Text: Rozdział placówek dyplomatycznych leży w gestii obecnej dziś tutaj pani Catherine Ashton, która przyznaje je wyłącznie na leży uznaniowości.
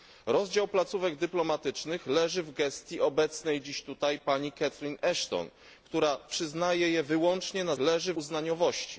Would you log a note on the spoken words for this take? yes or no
no